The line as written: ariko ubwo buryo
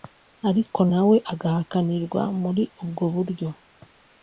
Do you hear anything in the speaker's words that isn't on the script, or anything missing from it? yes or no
yes